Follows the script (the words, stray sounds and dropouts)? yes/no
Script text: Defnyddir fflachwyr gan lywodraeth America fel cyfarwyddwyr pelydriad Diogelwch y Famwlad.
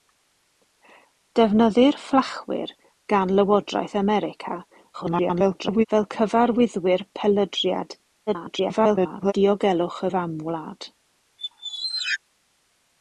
no